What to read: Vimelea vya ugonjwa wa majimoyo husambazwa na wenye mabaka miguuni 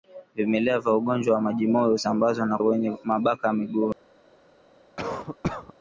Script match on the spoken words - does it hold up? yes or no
yes